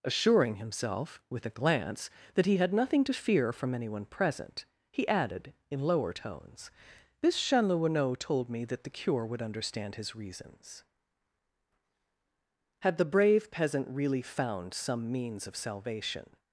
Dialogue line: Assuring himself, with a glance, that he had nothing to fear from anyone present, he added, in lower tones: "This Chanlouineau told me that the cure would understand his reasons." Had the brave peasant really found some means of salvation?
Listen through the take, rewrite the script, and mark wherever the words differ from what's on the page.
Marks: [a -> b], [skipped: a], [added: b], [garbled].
Assuring himself, with a glance, that he had nothing to fear from anyone present, he added, in lower tones: "This Chanlouineau told me that the cure would understand his reasons." Had the brave peasant really found some means of salvation?